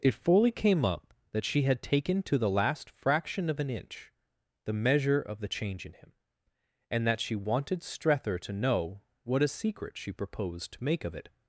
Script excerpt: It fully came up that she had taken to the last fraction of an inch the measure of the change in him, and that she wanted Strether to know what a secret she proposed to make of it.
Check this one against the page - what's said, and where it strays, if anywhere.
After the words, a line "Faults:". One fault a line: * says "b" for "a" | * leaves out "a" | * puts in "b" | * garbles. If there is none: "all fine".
It fully came up that she had taken to the last fraction of an inch the measure of the change in him, and that she wanted Strether to know what a secret she proposed to make of it.
Faults:
all fine